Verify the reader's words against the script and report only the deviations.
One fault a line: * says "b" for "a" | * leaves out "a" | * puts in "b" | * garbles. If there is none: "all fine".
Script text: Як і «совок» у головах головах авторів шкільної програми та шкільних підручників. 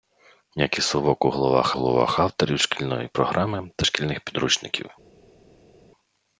all fine